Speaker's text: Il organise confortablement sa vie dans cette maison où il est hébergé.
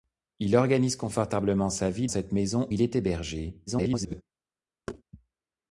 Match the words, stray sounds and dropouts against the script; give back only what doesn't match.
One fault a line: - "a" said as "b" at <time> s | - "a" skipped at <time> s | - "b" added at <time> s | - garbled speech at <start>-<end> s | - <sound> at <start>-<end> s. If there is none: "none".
- "dans" skipped at 2.1 s
- "où" skipped at 2.7 s
- garbled speech at 3.7-4.2 s
- thud at 4.9-5.0 s